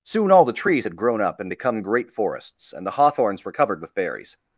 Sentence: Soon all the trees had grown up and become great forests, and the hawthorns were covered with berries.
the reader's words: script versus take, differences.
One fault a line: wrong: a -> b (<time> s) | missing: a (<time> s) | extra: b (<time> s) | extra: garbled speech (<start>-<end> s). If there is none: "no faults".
no faults